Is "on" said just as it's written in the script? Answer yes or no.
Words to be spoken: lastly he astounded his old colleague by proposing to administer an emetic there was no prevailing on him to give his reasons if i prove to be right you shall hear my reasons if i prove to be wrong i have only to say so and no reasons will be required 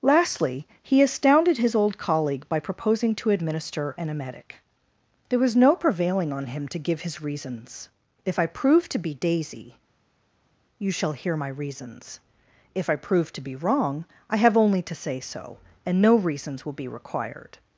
yes